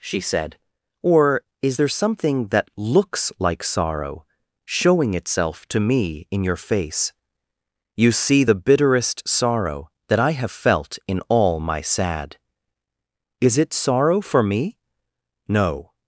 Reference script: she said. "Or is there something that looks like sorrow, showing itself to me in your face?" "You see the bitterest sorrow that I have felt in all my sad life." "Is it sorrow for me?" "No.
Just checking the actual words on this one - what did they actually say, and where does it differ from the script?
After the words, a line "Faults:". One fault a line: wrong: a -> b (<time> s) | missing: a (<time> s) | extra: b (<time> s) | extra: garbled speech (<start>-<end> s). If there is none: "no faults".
she said. "Or is there something that looks like sorrow, showing itself to me in your face?" "You see the bitterest sorrow that I have felt in all my sad." "Is it sorrow for me?" "No.
Faults:
missing: life (12.4 s)